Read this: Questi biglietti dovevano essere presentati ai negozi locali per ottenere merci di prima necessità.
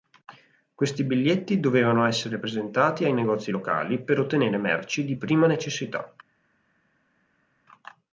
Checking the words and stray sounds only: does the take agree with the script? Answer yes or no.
yes